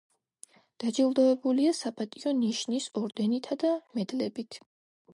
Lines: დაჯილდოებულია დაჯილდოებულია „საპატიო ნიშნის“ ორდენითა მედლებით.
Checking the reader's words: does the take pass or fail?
fail